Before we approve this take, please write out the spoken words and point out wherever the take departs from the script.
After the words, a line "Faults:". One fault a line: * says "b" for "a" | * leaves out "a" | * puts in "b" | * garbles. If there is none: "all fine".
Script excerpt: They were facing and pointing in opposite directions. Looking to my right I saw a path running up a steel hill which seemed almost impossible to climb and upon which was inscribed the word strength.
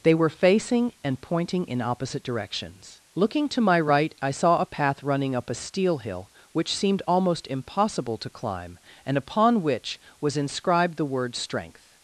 They were facing and pointing in opposite directions. Looking to my right I saw a path running up a steel hill which seemed almost impossible to climb and upon which was inscribed the word strength.
Faults:
all fine